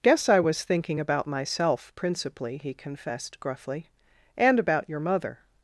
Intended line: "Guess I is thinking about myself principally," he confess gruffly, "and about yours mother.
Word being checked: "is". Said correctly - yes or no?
no